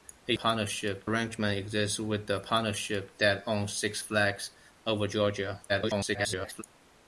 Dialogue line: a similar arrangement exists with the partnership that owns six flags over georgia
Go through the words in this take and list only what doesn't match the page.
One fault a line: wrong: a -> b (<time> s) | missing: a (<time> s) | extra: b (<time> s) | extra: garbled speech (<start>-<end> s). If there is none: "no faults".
wrong: similar -> partnership (0.3 s)
extra: garbled speech (5.7-6.6 s)